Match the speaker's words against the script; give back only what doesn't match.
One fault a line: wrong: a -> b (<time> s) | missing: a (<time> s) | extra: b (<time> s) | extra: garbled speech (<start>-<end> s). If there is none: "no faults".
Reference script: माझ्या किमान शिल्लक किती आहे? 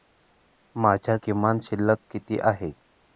no faults